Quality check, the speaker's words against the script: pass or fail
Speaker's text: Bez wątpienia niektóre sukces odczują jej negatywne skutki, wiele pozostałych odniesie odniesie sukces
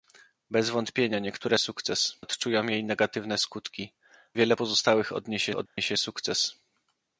pass